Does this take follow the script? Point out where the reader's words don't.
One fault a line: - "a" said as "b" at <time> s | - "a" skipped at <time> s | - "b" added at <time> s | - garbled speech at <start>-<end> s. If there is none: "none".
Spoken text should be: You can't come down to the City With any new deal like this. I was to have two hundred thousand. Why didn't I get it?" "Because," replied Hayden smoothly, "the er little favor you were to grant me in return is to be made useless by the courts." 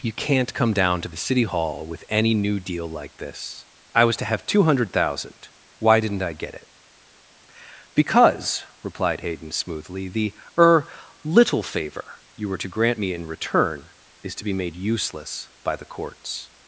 - "Hall" added at 1.4 s